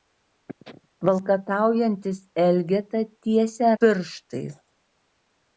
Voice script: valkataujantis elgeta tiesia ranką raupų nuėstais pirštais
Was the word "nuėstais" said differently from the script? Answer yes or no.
yes